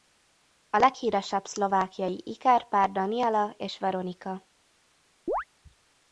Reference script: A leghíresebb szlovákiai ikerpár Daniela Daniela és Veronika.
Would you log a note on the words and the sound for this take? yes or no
yes